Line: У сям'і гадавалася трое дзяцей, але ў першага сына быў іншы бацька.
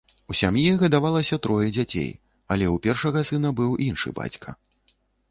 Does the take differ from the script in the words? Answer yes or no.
no